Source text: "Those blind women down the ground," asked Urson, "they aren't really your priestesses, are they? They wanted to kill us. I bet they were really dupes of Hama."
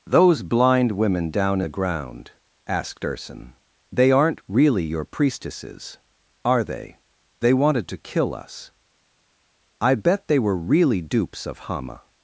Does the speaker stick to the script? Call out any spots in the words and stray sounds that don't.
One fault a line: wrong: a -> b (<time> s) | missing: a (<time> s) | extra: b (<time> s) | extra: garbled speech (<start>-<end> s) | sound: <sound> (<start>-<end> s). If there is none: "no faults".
no faults